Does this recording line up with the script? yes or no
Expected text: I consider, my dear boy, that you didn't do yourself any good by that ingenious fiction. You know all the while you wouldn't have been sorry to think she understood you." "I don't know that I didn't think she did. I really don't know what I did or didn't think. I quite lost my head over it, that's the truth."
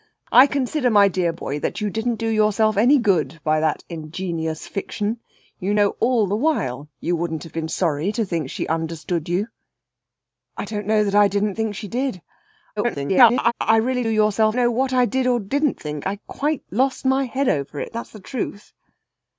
no